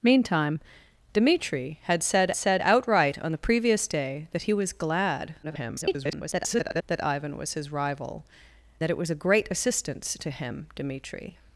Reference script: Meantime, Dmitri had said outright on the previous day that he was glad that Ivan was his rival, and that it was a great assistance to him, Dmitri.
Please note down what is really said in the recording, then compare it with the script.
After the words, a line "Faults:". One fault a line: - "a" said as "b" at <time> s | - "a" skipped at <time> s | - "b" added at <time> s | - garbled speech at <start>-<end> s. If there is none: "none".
Meantime, Dmitri had said said outright on the previous day that he was glad [garbled] that Ivan was his rival, that it was a great assistance to him, Dmitri.
Faults:
- "said" added at 2.3 s
- garbled speech at 5.4-6.8 s
- "and" skipped at 8.2 s